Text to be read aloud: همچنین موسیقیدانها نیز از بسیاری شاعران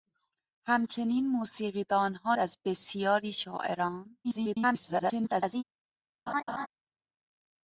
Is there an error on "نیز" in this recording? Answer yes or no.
yes